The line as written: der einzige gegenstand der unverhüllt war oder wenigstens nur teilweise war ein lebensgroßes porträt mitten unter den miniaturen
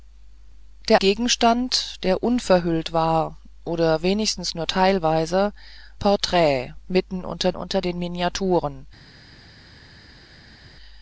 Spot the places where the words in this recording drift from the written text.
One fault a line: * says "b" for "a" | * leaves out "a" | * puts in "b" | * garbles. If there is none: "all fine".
* leaves out "einzige"
* leaves out "war ein lebensgroßes"
* puts in "unter"